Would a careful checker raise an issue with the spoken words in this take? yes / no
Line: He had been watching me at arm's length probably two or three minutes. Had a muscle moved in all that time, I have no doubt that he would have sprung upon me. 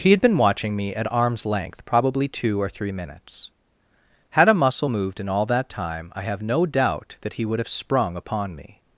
no